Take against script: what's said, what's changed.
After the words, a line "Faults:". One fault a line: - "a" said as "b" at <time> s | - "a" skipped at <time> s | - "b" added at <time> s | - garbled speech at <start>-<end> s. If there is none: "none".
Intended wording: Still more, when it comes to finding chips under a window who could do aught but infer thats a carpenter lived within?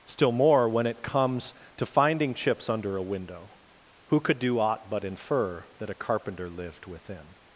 Still more, when it comes to finding chips under a window who could do aught but infer that a carpenter lived within?
Faults:
- "thats" said as "that" at 5.8 s